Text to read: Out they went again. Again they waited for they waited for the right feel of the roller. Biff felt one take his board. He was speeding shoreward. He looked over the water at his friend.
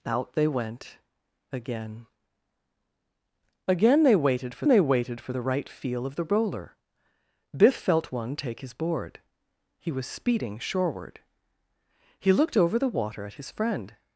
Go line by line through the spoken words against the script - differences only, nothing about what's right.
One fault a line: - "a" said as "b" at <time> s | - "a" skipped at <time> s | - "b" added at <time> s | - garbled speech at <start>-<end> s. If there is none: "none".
none